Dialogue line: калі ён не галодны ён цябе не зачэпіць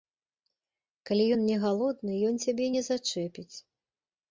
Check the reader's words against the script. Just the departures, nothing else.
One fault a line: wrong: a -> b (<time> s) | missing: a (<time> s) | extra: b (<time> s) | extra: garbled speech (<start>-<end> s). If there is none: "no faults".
no faults